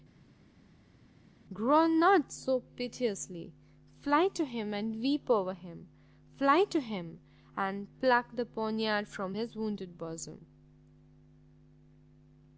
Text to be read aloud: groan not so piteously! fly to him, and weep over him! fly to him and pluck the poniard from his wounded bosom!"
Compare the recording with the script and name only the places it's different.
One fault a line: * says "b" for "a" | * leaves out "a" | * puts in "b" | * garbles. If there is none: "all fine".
all fine